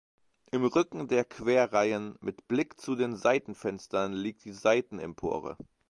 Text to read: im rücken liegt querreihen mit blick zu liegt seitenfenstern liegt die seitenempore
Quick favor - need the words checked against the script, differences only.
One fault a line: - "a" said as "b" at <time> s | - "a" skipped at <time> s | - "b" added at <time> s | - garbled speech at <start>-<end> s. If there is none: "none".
- "liegt" said as "der" at 1.1 s
- "liegt" said as "den" at 3.0 s